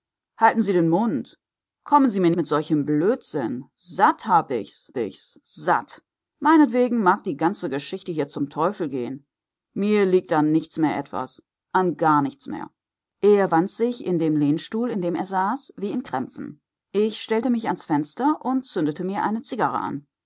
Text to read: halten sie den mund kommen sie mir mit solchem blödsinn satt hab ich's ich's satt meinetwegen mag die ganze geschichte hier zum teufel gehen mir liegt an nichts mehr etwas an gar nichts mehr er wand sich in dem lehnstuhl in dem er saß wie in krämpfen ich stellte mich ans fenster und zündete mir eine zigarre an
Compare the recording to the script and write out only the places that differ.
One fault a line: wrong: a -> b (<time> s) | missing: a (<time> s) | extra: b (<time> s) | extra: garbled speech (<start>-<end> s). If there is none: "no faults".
no faults